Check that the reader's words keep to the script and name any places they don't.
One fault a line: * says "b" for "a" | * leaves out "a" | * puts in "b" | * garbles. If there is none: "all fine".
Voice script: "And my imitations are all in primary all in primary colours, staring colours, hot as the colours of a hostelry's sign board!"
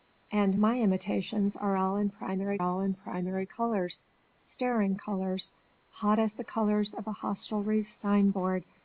all fine